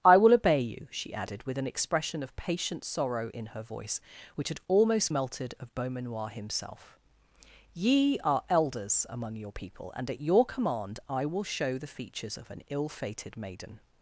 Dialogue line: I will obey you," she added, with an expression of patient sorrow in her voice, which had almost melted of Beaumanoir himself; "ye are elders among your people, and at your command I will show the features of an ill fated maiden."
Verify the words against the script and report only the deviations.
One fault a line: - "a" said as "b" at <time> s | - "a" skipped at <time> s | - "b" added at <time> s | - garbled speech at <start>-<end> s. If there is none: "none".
none